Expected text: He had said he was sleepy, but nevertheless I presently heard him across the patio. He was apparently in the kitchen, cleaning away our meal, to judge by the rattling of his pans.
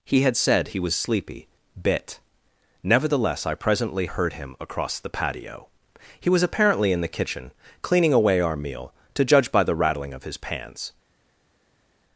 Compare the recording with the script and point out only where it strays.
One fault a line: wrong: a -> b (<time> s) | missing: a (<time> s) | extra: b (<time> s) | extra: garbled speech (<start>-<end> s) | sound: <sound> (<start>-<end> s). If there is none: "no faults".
wrong: but -> bit (1.8 s)